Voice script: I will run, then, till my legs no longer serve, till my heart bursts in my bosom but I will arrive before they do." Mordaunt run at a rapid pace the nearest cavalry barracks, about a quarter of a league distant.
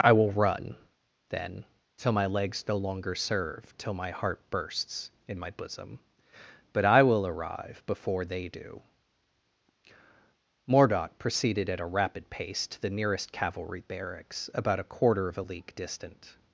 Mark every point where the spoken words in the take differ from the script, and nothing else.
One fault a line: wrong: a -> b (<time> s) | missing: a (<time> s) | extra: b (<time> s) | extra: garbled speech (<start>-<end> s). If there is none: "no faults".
wrong: run -> proceeded (11.2 s)
extra: to (12.7 s)